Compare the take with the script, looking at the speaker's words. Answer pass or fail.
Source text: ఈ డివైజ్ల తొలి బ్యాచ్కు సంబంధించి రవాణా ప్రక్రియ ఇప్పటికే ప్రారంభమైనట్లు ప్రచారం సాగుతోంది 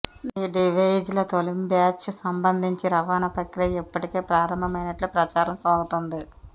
pass